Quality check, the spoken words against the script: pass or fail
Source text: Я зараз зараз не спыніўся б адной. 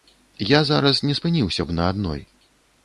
fail